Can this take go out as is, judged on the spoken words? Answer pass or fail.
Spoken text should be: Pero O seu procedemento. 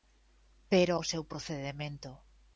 pass